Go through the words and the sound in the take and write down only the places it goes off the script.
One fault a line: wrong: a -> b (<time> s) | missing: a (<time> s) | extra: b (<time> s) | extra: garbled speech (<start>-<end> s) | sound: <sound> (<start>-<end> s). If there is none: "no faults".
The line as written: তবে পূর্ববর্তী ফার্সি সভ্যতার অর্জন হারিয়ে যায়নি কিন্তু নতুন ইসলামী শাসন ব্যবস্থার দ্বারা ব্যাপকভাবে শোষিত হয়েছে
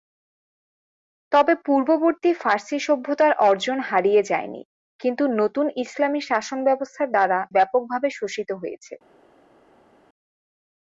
no faults